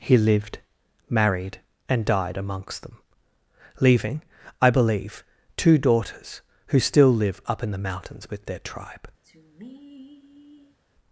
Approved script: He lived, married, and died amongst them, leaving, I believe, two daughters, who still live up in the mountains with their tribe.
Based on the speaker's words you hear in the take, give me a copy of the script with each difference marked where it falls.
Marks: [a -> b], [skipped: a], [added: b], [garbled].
He lived, married, and died amongst them, leaving, I believe, two daughters, who still live up in the mountains with their tribe.